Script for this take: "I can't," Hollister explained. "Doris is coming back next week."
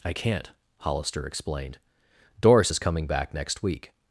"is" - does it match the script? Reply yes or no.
yes